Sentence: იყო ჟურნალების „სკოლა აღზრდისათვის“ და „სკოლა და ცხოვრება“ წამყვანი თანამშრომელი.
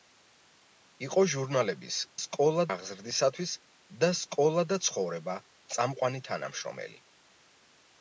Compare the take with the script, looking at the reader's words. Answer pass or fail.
pass